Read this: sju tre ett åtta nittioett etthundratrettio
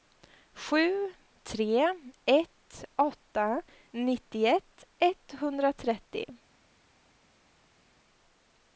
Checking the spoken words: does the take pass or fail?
pass